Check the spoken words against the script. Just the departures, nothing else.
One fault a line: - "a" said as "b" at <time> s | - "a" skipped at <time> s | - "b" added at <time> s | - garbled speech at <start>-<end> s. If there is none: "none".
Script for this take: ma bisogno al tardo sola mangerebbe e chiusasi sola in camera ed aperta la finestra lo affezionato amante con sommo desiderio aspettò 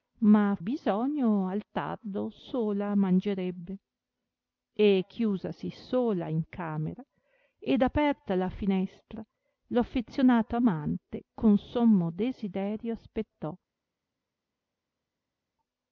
none